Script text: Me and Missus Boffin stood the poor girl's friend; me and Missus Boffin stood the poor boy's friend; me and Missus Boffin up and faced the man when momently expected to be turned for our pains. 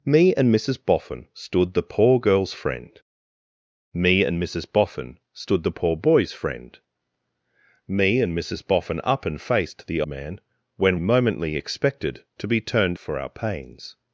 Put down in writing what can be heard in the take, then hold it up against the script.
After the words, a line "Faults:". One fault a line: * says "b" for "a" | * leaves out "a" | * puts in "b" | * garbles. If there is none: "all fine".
Me and Missus Boffin stood the poor girl's friend; me and Missus Boffin stood the poor boy's friend; me and Missus Boffin up and faced the man when momently expected to be turned for our pains.
Faults:
all fine